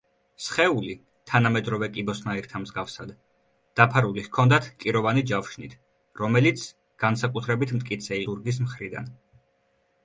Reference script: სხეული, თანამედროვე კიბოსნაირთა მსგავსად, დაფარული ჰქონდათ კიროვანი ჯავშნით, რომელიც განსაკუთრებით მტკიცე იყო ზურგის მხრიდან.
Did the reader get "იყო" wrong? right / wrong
wrong